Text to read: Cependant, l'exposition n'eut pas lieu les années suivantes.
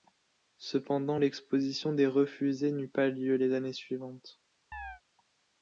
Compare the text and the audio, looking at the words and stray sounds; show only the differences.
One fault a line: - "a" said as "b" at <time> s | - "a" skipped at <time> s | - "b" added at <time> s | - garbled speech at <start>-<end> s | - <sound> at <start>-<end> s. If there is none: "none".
- "des refusés" added at 1.9 s
- chirp at 4.7-5.0 s